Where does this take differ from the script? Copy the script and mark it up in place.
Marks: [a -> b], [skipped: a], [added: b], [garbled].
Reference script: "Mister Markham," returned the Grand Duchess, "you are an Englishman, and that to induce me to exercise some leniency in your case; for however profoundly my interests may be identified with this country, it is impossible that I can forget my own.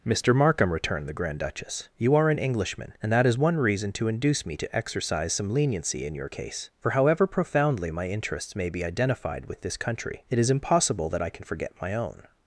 "Mister Markham," returned the Grand Duchess, "you are an Englishman, and that [added: is one reason] to induce me to exercise some leniency in your case; for however profoundly my interests may be identified with this country, it is impossible that I can forget my own.